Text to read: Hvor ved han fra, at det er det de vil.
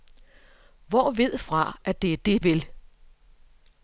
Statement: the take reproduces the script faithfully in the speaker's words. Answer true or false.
false